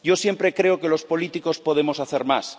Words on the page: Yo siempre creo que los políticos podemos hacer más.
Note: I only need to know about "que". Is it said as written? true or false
true